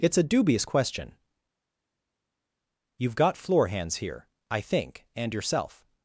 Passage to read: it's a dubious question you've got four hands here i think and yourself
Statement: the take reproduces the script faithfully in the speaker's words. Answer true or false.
false